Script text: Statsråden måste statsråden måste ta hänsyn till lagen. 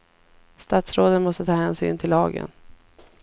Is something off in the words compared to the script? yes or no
yes